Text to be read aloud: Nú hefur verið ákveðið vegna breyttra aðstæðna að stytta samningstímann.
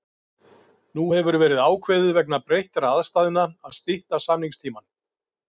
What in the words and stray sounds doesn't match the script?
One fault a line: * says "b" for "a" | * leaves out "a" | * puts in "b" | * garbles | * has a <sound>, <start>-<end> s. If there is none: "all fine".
all fine